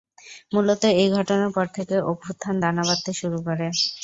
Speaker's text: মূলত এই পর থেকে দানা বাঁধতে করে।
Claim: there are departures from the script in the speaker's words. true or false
true